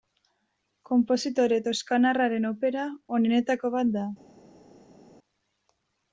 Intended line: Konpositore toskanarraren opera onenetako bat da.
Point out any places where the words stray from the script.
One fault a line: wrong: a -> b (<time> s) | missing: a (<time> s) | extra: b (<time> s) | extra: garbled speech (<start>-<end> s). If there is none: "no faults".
no faults